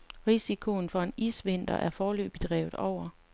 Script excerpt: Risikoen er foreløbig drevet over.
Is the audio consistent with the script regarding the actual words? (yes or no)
no